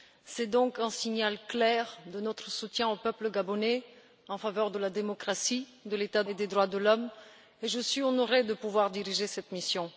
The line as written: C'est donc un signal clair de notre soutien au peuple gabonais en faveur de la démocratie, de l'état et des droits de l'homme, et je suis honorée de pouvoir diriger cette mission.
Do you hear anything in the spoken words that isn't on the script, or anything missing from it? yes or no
no